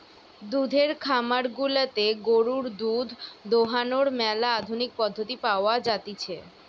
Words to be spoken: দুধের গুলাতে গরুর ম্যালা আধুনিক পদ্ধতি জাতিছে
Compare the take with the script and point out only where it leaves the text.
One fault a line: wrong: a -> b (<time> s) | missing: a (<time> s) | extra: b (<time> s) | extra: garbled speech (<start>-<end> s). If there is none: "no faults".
extra: খামার (1.0 s)
extra: দুধ দোহানোর (2.8 s)
extra: পাওয়া (5.5 s)